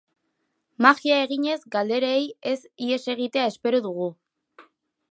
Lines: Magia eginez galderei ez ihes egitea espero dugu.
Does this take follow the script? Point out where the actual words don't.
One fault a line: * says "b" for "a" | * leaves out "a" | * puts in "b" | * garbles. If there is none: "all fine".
all fine